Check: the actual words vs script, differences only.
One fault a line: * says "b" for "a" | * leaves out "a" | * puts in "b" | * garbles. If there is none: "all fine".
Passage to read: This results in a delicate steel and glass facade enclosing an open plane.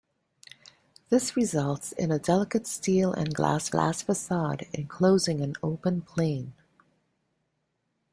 * puts in "glass"